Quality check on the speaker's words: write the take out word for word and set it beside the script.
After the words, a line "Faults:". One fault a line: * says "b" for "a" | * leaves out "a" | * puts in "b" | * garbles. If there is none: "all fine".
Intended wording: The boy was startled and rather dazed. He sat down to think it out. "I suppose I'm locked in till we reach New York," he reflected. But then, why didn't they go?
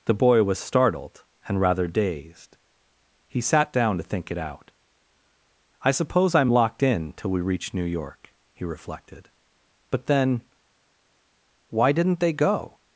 The boy was startled and rather dazed. He sat down to think it out. "I suppose I'm locked in till we reach New York," he reflected. But then, why didn't they go?
Faults:
all fine